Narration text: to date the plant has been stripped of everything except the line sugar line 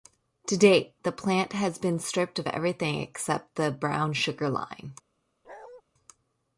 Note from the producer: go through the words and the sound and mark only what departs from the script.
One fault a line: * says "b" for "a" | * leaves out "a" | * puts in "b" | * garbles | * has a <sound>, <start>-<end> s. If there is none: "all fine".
* says "brown" for "line"
* has a bark, 5.4-5.8 s